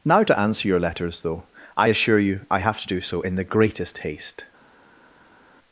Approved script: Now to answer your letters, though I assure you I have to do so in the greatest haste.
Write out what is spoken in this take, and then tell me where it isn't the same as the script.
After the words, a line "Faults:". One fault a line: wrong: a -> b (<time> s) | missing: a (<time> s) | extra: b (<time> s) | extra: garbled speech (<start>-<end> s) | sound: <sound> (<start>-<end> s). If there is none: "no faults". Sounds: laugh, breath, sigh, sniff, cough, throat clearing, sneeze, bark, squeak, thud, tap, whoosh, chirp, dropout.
Now to answer your letters, though I assure you I have to do so in the greatest haste.
Faults:
no faults